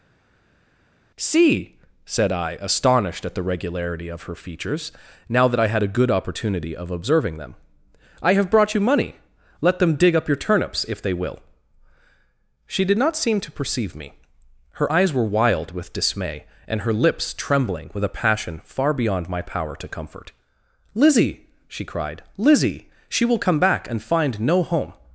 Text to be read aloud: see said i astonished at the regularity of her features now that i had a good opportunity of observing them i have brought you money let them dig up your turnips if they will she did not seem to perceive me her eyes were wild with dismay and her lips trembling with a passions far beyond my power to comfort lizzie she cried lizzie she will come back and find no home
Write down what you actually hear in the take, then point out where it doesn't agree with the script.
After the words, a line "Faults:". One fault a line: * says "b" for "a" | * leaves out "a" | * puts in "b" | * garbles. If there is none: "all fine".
see said i astonished at the regularity of her features now that i had a good opportunity of observing them i have brought you money let them dig up your turnips if they will she did not seem to perceive me her eyes were wild with dismay and her lips trembling with a passion far beyond my power to comfort lizzie she cried lizzie she will come back and find no home
Faults:
* says "passion" for "passions"